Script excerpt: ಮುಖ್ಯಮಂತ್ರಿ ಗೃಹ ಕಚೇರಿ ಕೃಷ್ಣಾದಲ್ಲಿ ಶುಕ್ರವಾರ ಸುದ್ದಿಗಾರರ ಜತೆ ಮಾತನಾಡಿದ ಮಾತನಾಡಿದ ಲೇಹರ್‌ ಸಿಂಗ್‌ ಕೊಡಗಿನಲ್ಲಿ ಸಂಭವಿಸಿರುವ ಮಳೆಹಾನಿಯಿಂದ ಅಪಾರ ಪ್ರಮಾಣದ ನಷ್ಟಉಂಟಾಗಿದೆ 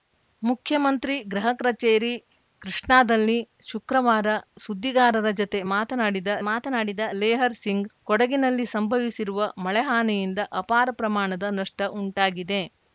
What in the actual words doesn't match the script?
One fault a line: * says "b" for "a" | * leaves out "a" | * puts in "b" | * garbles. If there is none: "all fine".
all fine